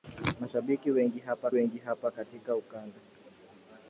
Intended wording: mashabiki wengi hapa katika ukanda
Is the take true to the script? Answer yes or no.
no